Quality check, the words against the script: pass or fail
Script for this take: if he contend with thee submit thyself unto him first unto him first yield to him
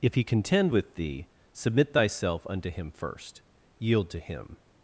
fail